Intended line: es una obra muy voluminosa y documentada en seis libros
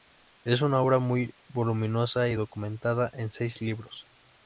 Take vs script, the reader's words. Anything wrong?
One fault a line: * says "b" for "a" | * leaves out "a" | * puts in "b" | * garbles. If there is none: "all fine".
all fine